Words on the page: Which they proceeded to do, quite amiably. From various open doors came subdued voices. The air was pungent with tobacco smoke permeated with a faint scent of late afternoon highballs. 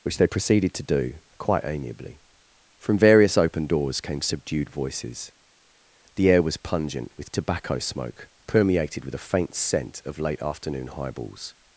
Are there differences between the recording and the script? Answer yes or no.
no